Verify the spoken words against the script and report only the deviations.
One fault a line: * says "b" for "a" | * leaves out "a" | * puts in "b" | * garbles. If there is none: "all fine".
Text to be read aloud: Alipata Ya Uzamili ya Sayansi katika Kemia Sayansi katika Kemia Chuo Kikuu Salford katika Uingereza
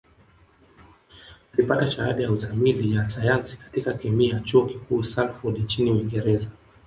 * puts in "Shahada"
* leaves out "Sayansi katika Kemia"
* says "nchini" for "katika"